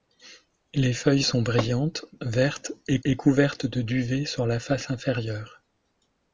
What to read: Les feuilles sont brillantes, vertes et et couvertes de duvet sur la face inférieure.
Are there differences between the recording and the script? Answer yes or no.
no